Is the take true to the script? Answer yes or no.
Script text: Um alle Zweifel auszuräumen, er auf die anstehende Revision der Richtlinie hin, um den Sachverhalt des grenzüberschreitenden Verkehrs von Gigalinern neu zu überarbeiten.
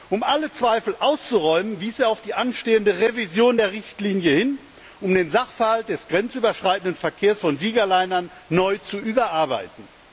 no